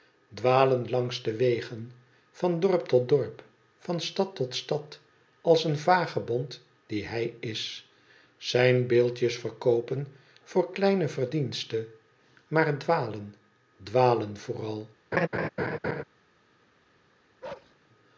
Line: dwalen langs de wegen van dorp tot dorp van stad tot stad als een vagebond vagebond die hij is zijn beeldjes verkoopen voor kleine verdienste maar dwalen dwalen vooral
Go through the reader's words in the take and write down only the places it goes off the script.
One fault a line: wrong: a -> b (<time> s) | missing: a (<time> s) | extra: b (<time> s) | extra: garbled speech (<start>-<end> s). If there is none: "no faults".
missing: vagebond (6.6 s)